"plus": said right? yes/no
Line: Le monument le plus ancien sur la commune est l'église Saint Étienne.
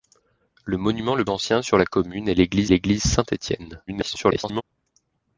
no